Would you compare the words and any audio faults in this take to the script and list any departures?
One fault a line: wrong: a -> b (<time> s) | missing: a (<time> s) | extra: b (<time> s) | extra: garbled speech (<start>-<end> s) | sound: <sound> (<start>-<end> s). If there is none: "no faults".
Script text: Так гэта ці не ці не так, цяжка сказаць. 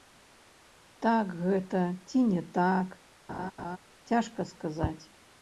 missing: ці не (2.4 s)
sound: laugh (3.3-3.8 s)